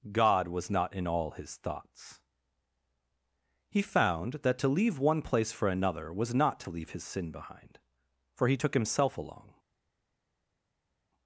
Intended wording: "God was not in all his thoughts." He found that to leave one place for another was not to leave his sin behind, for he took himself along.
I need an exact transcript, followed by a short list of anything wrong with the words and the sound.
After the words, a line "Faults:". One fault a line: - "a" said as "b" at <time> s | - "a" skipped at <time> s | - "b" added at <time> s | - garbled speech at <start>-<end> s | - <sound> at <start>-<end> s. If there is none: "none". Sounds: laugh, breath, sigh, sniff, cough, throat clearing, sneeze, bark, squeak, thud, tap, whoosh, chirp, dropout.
"God was not in all his thoughts." He found that to leave one place for another was not to leave his sin behind, for he took himself along.
Faults:
none